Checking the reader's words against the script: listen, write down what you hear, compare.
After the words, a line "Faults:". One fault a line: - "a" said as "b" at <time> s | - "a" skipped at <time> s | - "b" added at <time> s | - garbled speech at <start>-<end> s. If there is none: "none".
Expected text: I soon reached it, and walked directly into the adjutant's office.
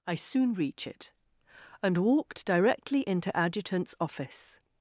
I soon reach it, and walked directly into adjutant's office.
Faults:
- "reached" said as "reach" at 0.5 s
- "the" skipped at 3.4 s